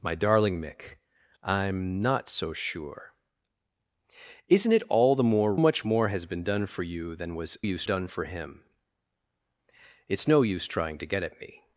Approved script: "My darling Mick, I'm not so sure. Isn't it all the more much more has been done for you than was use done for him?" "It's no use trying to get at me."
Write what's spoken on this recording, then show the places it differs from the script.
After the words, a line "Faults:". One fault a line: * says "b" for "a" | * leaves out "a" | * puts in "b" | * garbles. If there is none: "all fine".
"My darling Mick, I'm not so sure. Isn't it all the more much more has been done for you than was use done for him?" "It's no use trying to get at me."
Faults:
all fine